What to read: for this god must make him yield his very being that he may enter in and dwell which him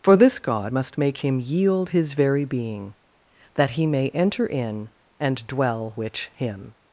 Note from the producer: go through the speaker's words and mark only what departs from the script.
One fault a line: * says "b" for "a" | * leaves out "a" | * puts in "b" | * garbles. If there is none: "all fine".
all fine